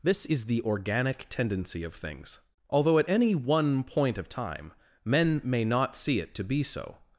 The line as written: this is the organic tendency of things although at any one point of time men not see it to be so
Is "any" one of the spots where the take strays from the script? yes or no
no